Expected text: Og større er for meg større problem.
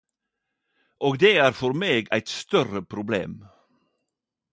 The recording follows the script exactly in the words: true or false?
false